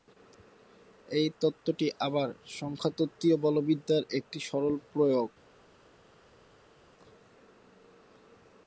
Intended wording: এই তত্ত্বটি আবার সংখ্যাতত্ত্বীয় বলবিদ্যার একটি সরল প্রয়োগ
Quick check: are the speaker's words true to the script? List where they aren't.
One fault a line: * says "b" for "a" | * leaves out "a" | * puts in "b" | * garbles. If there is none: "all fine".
all fine